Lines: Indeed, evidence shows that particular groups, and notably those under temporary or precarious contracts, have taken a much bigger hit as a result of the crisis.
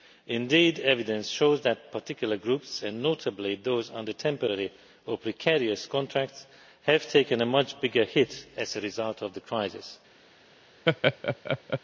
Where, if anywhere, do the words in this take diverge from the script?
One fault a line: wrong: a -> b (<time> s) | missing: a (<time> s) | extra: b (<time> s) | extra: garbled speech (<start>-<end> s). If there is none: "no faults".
no faults